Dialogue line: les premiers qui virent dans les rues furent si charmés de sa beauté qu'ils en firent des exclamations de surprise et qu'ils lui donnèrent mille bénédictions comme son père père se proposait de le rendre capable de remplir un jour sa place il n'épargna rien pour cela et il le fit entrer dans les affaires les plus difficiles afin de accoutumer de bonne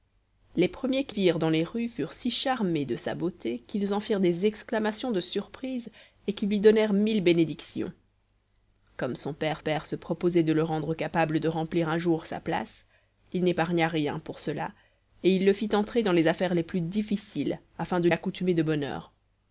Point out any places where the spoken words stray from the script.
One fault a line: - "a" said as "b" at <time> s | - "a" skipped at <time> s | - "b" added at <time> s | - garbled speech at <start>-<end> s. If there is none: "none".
none